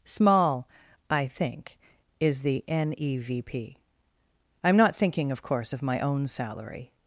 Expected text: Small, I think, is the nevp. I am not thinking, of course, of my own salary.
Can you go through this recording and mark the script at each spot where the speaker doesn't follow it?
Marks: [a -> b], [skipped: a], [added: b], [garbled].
Small, I think, is the nevp. I am not thinking, of course, of my own salary.